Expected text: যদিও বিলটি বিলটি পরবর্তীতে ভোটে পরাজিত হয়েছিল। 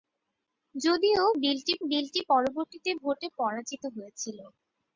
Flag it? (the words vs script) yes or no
no